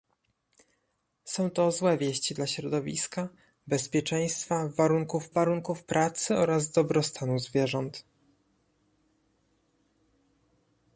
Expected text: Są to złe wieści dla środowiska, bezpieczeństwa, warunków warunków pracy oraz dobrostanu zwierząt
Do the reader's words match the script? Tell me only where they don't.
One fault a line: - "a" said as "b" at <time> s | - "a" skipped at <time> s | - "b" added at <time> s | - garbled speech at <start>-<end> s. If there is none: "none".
none